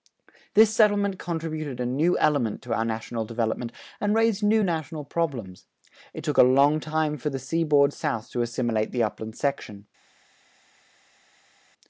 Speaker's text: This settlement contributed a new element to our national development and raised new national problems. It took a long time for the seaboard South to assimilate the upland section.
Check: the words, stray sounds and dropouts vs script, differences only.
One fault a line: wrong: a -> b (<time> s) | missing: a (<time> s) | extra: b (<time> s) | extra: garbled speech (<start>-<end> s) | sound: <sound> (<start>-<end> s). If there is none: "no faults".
no faults